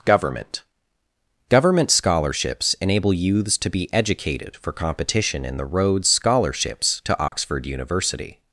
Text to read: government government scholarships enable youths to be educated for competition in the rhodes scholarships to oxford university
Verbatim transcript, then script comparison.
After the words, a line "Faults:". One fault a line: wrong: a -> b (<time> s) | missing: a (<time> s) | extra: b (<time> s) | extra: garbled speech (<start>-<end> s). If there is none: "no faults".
government government scholarships enable youths to be educated for competition in the rhodes scholarships to oxford university
Faults:
no faults